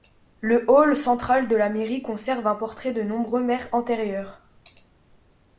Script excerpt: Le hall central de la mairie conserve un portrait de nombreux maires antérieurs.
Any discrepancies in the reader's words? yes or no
no